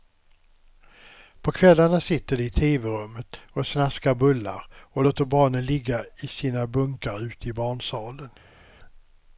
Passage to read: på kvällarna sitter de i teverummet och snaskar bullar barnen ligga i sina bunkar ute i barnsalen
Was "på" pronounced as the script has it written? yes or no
yes